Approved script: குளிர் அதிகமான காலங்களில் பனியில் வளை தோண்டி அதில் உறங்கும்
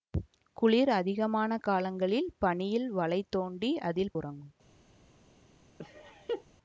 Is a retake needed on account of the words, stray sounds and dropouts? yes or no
yes